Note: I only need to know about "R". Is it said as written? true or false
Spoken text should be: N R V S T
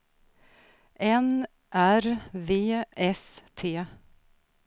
true